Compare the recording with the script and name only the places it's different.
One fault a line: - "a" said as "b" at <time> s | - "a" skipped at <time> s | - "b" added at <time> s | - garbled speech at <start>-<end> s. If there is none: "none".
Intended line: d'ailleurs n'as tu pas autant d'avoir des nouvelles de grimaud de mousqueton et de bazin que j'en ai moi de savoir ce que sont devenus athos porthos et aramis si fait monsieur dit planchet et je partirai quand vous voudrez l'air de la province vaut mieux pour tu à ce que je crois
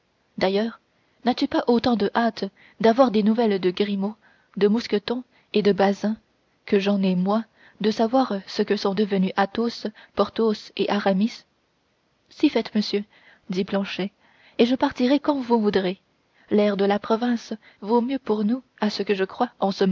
- "de hâte" added at 1.9 s
- "tu" said as "nous" at 18.4 s